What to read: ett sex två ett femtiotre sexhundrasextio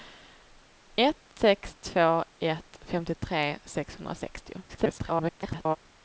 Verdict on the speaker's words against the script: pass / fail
fail